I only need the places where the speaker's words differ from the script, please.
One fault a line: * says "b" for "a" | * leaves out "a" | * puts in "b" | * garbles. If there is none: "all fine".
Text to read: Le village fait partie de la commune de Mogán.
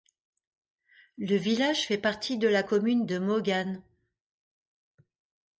all fine